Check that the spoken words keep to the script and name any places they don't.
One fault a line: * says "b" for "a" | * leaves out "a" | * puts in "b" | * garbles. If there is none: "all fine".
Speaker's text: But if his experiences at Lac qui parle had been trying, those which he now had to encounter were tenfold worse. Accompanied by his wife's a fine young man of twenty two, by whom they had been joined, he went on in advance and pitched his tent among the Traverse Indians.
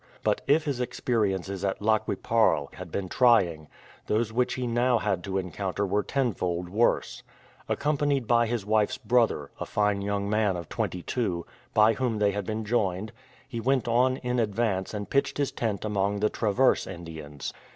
* puts in "brother"